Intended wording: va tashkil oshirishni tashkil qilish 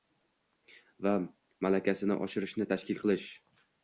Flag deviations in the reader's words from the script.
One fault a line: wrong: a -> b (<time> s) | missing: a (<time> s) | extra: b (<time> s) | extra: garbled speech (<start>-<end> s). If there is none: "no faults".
wrong: tashkil -> malakasini (1.6 s)